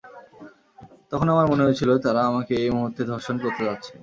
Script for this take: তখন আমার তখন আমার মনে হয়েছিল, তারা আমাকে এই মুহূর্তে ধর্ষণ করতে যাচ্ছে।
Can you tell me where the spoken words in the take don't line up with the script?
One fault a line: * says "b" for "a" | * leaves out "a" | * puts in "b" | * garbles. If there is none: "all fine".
* leaves out "তখন আমার"